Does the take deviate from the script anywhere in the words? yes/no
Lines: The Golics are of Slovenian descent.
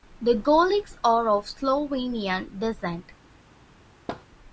no